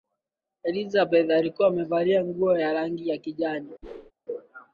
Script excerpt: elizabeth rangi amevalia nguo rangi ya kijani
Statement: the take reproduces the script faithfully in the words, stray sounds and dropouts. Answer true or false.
false